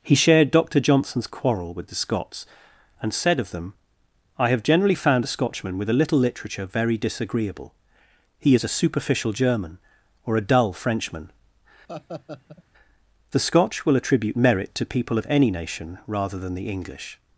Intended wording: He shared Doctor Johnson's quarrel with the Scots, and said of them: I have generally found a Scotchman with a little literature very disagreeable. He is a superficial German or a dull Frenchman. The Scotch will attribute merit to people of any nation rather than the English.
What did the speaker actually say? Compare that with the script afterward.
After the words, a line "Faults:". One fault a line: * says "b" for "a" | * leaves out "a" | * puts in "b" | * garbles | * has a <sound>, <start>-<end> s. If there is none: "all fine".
He shared Doctor Johnson's quarrel with the Scots, and said of them: I have generally found a Scotchman with a little literature very disagreeable. He is a superficial German or a dull Frenchman. The Scotch will attribute merit to people of any nation rather than the English.
Faults:
* has a laugh, 11.9-12.6 s